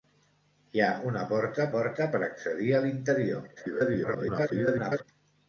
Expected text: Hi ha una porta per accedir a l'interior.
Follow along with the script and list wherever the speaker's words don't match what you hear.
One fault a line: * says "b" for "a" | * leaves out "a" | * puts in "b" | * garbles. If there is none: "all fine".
* puts in "porta"
* garbles